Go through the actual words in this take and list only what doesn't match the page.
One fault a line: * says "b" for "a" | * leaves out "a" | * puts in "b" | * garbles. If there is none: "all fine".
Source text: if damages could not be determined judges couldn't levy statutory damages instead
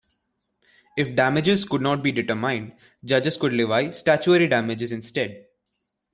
* says "could" for "couldn't"